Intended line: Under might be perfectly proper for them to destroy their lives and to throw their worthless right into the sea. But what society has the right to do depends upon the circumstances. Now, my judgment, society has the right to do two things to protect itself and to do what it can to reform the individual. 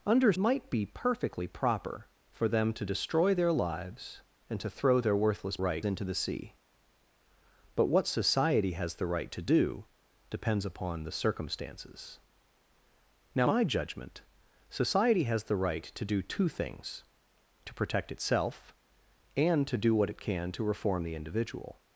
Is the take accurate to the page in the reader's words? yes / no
yes